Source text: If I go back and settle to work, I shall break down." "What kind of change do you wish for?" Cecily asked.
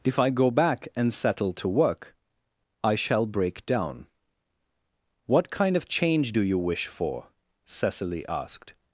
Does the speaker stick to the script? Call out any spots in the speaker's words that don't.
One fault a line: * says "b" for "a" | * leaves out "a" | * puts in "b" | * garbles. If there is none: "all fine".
all fine